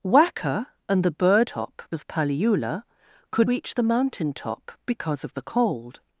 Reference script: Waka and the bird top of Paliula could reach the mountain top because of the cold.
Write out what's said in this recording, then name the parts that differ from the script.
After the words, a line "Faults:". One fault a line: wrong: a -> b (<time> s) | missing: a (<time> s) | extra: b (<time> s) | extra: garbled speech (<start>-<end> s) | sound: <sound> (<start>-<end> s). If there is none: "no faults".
Waka and the bird top of Paliula could reach the mountain top because of the cold.
Faults:
no faults